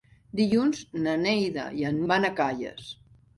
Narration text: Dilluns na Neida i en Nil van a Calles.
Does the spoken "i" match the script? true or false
true